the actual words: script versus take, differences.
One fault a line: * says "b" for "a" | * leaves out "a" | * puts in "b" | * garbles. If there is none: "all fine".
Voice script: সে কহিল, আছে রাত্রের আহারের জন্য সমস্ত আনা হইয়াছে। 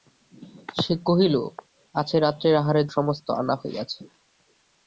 * leaves out "জন্য"